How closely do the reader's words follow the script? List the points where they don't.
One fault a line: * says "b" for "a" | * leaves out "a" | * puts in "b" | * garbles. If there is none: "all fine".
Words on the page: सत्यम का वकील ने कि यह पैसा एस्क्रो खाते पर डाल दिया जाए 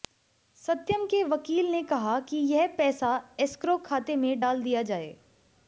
* says "के" for "का"
* puts in "कहा"
* says "में" for "पर"